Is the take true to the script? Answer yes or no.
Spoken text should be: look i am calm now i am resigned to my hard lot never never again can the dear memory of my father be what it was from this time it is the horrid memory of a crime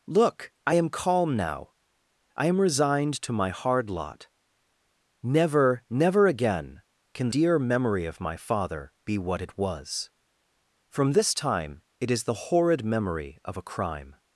no